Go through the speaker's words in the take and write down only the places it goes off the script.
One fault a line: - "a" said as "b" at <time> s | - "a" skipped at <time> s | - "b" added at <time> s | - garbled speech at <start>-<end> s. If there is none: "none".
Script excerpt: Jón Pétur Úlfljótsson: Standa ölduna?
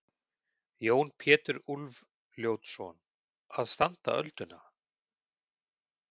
- "Að" added at 3.6 s